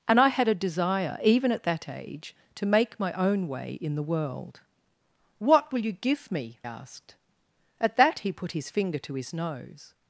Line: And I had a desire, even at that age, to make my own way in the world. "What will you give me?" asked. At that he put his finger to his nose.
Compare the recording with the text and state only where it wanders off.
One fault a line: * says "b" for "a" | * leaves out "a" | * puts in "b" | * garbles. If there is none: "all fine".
all fine